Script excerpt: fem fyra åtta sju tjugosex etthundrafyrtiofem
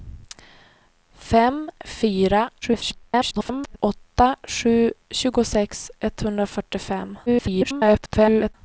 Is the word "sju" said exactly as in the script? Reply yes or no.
yes